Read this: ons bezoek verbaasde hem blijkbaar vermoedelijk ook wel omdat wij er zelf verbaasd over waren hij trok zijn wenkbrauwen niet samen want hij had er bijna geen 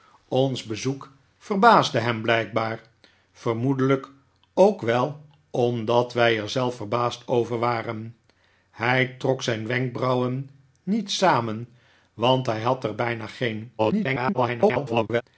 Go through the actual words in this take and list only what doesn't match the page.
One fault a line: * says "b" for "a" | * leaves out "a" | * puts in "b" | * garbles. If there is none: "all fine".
* garbles